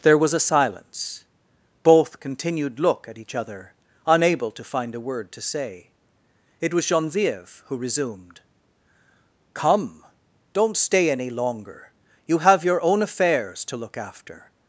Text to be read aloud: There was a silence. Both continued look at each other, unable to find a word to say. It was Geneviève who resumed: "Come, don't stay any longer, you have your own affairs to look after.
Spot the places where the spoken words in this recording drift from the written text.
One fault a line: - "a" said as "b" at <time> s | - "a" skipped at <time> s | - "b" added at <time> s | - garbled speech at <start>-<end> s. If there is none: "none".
none